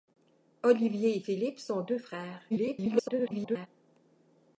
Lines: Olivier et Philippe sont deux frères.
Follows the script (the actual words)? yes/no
no